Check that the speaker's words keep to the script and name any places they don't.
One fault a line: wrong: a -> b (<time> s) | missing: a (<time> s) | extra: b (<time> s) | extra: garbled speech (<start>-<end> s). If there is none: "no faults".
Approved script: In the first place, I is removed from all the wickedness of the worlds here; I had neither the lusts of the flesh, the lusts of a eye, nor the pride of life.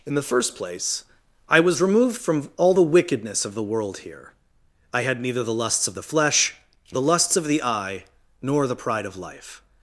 wrong: is -> was (1.6 s)
wrong: worlds -> world (3.6 s)
wrong: a -> the (7.4 s)